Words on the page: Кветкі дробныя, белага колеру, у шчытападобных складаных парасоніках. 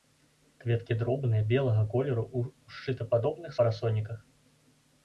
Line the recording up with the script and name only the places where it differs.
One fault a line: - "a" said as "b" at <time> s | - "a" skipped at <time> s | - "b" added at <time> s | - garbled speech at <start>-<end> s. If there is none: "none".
- "складаных" skipped at 3.5 s